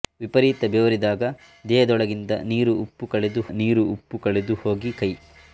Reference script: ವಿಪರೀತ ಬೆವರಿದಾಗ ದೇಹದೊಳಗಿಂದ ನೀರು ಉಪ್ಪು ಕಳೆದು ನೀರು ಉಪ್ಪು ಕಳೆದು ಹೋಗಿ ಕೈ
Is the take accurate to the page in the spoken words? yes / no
yes